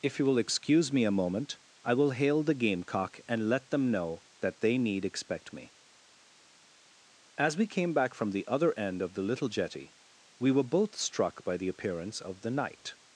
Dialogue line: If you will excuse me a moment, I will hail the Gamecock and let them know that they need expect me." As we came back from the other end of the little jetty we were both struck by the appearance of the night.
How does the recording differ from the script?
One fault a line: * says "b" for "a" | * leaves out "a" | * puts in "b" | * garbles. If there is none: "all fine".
all fine